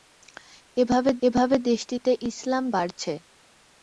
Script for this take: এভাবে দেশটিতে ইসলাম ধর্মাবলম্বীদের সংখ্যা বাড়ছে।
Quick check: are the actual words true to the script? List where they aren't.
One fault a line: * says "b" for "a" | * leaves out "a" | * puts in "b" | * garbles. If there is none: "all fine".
* puts in "এভাবে"
* leaves out "ধর্মাবলম্বীদের সংখ্যা"